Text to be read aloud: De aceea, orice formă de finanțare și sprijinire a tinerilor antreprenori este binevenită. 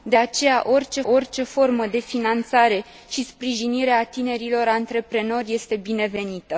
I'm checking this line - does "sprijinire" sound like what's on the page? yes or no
yes